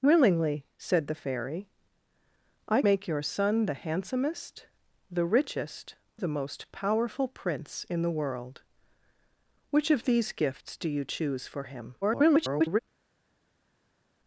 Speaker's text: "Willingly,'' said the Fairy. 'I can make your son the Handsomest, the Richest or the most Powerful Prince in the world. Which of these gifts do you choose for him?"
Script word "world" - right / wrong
right